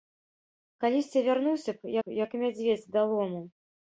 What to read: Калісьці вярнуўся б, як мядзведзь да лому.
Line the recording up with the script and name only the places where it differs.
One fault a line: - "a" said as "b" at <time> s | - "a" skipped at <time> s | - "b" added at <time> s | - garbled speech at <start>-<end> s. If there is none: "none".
- "б" added at 2.0 s